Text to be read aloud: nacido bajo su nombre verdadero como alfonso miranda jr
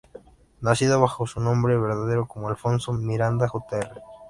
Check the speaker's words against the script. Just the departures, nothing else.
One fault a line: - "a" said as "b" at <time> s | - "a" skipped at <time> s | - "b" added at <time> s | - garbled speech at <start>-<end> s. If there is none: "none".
none